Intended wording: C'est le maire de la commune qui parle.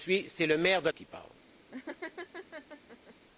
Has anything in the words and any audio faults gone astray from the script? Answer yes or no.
yes